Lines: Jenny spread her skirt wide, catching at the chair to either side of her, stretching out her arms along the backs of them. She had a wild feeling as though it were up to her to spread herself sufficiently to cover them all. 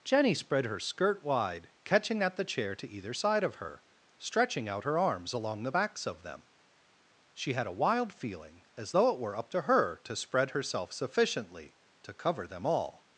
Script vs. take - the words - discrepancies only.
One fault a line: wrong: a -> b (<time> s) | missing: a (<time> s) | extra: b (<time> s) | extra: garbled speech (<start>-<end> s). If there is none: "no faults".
no faults